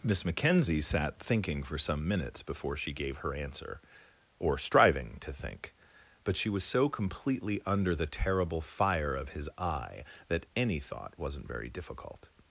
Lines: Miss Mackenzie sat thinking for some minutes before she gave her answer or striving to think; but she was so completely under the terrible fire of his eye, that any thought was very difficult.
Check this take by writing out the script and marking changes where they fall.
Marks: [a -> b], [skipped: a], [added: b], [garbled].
Miss Mackenzie sat thinking for some minutes before she gave her answer or striving to think; but she was so completely under the terrible fire of his eye, that any thought [was -> wasn't] very difficult.